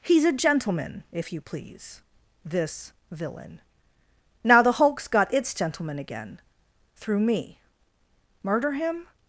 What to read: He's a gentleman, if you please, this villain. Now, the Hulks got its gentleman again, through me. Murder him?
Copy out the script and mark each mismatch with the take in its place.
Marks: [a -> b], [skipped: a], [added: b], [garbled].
He's a gentleman, if you please, this villain. Now, the Hulks got its gentleman again, through me. Murder him?